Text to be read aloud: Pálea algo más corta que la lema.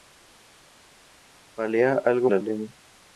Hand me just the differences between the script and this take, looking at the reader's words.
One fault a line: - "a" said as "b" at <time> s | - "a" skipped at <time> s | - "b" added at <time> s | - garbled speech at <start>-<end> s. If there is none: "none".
- "más corta que" skipped at 2.3 s